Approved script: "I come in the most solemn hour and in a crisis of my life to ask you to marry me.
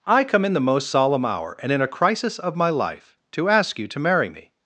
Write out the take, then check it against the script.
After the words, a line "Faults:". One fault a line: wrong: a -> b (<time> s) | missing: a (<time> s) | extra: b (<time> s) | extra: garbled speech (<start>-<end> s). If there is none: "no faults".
"I come in the most solemn hour and in a crisis of my life to ask you to marry me.
Faults:
no faults